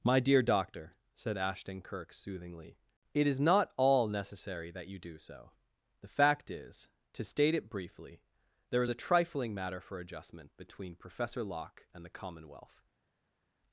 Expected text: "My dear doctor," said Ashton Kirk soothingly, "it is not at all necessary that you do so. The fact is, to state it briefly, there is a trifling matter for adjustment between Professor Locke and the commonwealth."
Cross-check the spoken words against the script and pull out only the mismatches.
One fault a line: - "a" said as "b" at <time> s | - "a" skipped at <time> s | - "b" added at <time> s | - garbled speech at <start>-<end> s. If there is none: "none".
- "at" skipped at 3.7 s